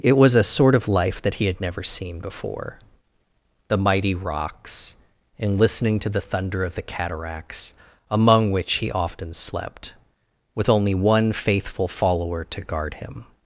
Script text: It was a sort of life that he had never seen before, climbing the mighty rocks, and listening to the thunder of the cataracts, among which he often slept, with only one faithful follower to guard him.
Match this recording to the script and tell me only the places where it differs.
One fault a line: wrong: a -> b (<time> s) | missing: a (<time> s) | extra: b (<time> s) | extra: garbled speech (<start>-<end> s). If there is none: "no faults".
missing: climbing (2.8 s)